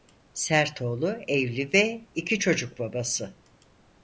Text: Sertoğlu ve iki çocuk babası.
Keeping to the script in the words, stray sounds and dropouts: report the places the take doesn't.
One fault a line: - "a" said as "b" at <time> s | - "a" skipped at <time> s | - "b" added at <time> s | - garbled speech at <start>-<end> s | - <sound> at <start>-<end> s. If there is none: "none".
- "evli" added at 1.3 s